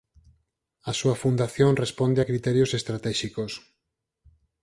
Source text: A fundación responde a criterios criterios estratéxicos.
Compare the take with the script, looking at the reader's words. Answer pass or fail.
fail